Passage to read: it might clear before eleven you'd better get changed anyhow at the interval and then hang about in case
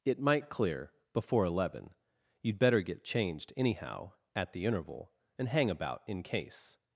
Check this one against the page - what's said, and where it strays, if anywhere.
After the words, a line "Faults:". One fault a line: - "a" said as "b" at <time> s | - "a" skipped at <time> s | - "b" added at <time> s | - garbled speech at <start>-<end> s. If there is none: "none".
it might clear before eleven you'd better get changed anyhow at the interval and hang about in case
Faults:
- "then" skipped at 5.5 s